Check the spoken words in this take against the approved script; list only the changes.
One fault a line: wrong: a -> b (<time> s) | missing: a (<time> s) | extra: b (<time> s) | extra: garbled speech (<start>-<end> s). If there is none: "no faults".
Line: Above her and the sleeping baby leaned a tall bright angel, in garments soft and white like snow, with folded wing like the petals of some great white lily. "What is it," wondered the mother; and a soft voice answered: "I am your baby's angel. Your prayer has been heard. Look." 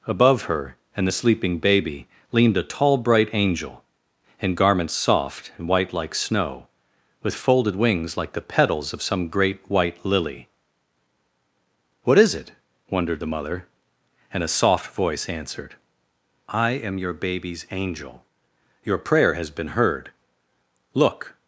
wrong: wing -> wings (7.8 s)